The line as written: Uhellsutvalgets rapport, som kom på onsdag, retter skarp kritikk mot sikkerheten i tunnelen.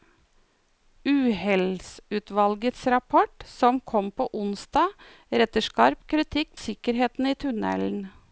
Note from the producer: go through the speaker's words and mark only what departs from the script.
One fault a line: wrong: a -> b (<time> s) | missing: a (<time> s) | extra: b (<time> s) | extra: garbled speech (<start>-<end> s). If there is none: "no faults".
missing: mot (6.6 s)